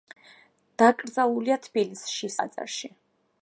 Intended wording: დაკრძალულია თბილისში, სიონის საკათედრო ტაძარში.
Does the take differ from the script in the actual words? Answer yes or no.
yes